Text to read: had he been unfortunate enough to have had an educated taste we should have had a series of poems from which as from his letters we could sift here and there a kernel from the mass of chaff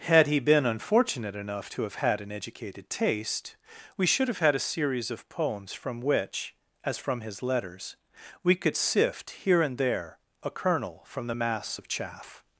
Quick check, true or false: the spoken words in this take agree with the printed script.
true